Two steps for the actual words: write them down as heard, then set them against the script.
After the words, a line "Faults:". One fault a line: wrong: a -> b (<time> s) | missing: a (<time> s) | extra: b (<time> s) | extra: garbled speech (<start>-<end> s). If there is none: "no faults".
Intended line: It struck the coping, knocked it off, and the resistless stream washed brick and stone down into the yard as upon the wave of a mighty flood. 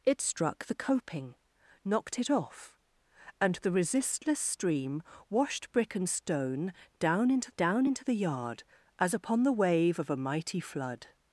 It struck the coping, knocked it off, and the resistless stream washed brick and stone down into down into the yard as upon the wave of a mighty flood.
Faults:
extra: down into (7.6 s)